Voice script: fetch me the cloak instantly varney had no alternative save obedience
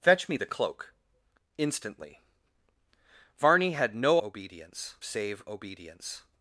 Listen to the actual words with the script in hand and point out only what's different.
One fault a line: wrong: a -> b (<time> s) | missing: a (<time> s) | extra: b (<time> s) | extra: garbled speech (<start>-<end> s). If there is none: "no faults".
wrong: alternative -> obedience (4.2 s)